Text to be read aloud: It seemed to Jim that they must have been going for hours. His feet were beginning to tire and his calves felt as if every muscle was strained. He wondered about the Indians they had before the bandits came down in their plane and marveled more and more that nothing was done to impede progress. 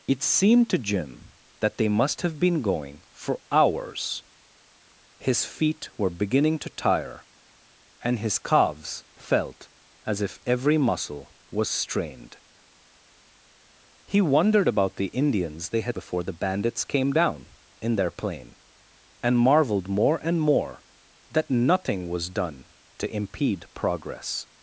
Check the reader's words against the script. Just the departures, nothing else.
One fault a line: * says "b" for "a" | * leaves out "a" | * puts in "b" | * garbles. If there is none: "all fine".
all fine